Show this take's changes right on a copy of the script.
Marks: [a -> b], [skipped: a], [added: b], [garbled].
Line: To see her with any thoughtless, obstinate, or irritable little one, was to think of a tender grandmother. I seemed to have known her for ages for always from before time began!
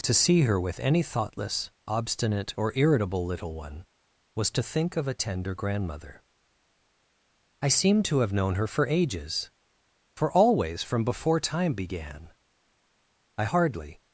To see her with any thoughtless, obstinate, or irritable little one, was to think of a tender grandmother. I seemed to have known her for ages for always from before time began! [added: I hardly]